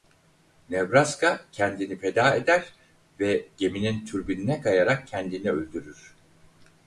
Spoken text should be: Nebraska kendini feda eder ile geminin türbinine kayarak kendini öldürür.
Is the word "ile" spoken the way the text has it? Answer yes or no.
no